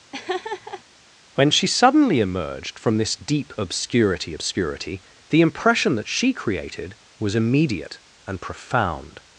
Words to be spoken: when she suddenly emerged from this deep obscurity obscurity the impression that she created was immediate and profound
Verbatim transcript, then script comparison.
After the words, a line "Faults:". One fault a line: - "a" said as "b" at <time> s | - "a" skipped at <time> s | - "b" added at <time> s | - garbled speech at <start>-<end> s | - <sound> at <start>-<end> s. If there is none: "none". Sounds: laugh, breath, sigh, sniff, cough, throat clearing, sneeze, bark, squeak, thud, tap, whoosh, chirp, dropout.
when she suddenly emerged from this deep obscurity obscurity the impression that she created was immediate and profound
Faults:
- laugh at 0.1-0.8 s